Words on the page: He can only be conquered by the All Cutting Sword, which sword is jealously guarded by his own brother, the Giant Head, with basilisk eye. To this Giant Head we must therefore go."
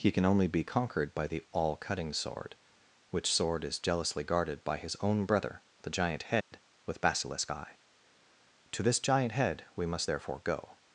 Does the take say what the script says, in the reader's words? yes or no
yes